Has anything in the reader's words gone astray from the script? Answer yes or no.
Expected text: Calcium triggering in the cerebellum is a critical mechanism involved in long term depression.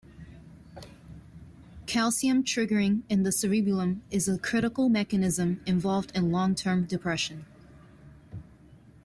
no